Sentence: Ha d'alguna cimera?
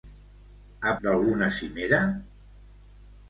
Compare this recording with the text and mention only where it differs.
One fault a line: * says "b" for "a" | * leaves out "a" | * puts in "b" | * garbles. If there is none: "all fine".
all fine